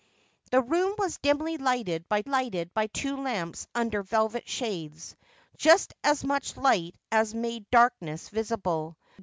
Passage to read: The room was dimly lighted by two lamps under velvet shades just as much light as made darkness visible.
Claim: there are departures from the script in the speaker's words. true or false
true